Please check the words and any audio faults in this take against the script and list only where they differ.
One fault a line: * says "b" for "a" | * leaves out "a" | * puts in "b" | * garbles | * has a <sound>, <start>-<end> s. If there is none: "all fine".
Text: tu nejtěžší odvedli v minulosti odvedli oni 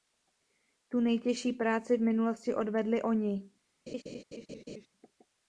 * says "práci" for "odvedli"
* has a laugh, 3.9-4.9 s